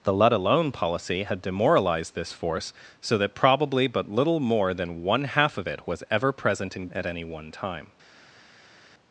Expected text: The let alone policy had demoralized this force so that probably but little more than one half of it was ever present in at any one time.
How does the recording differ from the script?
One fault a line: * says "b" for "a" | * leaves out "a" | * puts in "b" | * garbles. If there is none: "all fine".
all fine